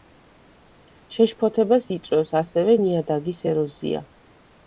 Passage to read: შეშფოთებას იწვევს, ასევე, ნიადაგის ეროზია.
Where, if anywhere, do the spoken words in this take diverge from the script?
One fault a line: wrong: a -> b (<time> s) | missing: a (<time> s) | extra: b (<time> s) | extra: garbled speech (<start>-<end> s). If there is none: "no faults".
no faults